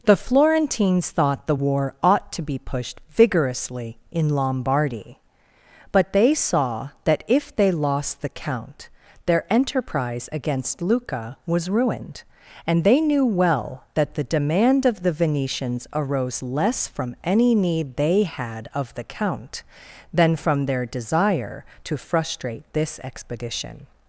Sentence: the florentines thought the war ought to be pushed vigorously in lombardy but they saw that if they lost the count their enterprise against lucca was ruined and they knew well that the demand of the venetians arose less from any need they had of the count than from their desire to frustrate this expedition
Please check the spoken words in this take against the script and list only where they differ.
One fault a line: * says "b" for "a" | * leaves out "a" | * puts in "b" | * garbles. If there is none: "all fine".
all fine